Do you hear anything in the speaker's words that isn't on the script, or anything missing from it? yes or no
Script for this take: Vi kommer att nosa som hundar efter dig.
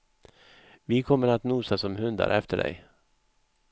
no